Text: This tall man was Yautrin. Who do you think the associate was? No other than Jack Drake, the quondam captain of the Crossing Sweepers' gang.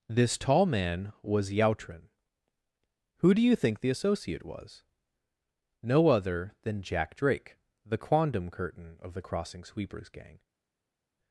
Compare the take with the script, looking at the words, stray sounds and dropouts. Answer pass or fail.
fail